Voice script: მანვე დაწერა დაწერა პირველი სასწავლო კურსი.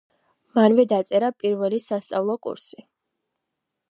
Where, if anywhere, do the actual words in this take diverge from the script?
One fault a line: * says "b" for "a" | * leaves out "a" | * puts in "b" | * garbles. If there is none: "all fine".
* leaves out "დაწერა"